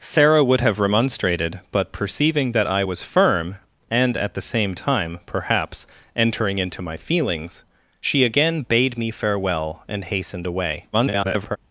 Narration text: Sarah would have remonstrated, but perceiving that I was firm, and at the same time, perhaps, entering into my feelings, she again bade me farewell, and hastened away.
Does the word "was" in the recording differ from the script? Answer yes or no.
no